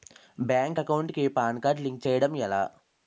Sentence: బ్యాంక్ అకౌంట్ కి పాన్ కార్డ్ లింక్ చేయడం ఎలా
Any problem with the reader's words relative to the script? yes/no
no